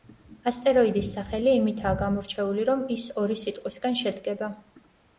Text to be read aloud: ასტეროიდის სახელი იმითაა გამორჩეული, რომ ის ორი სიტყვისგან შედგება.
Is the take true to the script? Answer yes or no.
yes